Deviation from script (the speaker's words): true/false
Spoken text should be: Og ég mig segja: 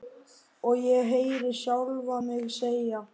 true